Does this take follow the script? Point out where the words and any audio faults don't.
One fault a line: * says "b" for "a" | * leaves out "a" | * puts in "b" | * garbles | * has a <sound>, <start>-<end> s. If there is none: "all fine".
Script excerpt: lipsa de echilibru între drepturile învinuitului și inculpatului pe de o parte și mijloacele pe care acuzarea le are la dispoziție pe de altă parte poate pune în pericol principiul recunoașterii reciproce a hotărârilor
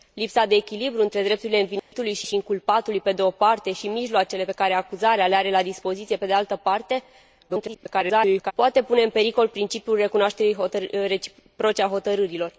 * has a dropout, 1.8-1.9 s
* puts in "și"
* garbles